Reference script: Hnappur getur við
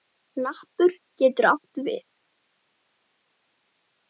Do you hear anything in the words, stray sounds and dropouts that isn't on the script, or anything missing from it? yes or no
yes